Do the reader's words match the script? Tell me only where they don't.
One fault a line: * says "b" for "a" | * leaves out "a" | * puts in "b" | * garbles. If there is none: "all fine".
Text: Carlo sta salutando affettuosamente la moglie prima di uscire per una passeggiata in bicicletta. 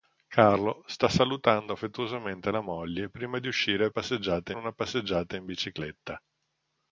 * says "passeggiata" for "per"